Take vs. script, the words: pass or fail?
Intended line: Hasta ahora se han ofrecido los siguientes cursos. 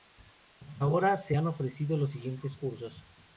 pass